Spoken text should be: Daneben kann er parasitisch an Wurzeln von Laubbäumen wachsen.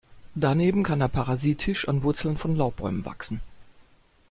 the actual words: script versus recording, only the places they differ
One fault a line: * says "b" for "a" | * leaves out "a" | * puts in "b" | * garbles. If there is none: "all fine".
all fine